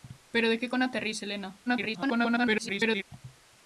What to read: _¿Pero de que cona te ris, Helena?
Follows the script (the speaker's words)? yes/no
no